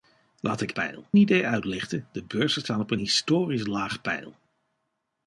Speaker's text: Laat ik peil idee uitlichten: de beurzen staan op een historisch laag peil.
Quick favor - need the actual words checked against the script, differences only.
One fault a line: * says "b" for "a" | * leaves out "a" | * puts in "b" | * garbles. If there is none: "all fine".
all fine